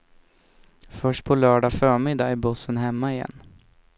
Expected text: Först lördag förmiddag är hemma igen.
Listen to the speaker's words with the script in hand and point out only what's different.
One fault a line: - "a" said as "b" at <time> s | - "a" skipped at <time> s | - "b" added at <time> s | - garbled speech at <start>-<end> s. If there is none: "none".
- "på" added at 1.2 s
- "bussen" added at 2.4 s